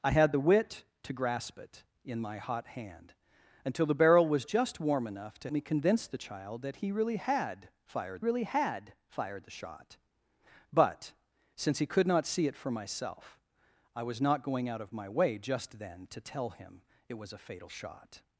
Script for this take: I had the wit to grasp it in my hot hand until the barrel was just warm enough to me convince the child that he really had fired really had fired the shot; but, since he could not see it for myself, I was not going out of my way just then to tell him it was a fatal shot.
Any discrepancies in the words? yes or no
no